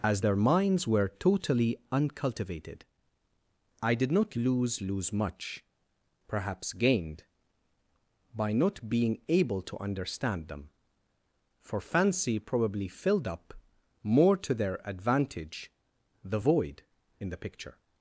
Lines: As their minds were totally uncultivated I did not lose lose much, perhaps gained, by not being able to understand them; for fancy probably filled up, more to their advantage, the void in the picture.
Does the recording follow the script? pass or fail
pass